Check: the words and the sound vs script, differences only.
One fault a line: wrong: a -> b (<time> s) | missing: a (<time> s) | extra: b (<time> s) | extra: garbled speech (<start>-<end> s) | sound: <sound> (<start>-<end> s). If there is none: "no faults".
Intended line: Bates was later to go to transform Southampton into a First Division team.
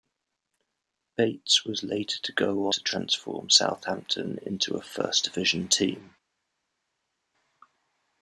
no faults